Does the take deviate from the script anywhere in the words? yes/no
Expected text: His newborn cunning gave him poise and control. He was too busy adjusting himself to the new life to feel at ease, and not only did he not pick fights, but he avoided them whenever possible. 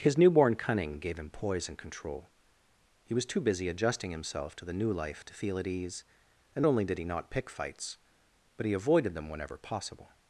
yes